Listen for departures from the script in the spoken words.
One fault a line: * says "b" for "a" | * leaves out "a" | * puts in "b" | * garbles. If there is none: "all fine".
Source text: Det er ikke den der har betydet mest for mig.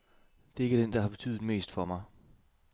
all fine